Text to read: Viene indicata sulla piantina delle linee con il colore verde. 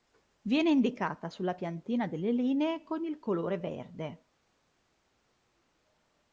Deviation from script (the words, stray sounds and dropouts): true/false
false